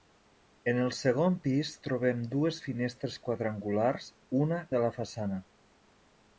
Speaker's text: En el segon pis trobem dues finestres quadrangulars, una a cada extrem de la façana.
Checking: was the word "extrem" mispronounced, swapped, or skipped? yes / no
yes